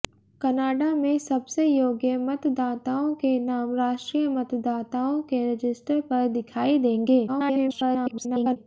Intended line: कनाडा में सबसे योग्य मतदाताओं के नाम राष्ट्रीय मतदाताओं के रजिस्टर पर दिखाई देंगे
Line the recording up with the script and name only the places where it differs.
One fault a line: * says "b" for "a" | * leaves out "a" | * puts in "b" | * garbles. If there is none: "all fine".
* garbles